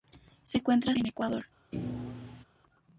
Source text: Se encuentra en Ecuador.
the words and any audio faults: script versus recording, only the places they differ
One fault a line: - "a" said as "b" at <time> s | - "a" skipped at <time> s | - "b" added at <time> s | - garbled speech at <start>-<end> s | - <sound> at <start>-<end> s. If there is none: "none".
- thud at 1.7-2.4 s